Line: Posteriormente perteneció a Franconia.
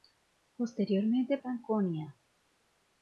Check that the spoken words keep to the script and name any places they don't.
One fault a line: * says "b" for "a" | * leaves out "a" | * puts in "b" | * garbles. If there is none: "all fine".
* leaves out "perteneció a"